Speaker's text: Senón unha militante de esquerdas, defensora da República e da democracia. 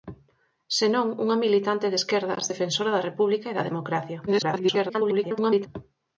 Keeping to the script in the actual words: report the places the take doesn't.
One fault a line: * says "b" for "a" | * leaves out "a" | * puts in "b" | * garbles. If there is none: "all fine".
* garbles